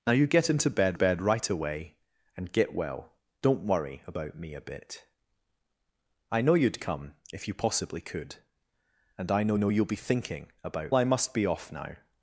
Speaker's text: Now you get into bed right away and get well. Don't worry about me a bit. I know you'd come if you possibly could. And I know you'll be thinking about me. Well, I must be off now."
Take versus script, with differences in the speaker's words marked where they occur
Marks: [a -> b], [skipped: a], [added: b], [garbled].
Now you get into bed [added: bed] right away and get well. Don't worry about me a bit. I know you'd come if you possibly could. And I know [added: know] you'll be thinking about [skipped: me. Well,] I must be off now."